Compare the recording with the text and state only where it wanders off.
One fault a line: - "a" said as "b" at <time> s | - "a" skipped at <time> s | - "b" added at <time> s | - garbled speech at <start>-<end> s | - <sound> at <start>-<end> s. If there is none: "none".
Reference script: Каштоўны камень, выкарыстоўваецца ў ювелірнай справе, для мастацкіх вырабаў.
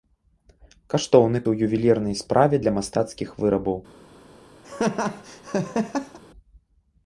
- "камень выкарыстоўваецца" skipped at 1.4 s
- laugh at 4.6-6.2 s